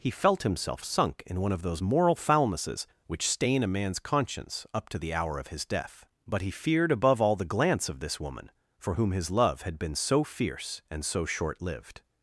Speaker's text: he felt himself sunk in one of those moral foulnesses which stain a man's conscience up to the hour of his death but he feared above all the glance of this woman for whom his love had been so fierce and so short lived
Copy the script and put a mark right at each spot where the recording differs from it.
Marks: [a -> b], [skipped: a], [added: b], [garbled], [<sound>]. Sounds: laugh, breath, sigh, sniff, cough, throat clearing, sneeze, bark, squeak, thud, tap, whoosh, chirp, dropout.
he felt himself sunk in one of those moral foulnesses which stain a man's conscience up to the hour of his death but he feared above all the glance of this woman for whom his love had been so fierce and so short lived